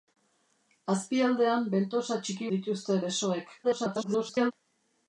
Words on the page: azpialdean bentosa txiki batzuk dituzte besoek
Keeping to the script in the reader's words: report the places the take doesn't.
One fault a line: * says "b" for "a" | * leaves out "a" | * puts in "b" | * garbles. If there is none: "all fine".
* leaves out "batzuk"
* garbles